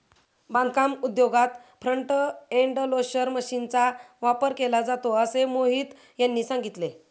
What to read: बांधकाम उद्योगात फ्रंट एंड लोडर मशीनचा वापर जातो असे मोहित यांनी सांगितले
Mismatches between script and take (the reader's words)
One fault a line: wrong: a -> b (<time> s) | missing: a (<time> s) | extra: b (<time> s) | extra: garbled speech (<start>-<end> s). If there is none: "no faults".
extra: केला (4.5 s)